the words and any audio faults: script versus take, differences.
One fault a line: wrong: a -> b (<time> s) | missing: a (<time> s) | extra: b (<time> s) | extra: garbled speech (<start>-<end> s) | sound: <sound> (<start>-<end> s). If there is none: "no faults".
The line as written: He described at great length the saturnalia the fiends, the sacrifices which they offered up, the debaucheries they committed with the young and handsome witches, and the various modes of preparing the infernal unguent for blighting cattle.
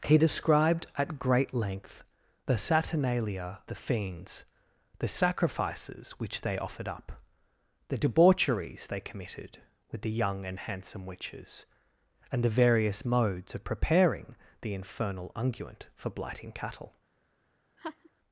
sound: laugh (17.8-18.1 s)